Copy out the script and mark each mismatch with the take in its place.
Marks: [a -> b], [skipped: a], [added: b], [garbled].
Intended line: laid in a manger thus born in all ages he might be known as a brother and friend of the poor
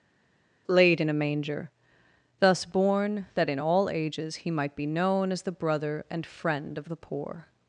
laid in a manger thus born [added: that] in all ages he might be known as [a -> the] brother and friend of the poor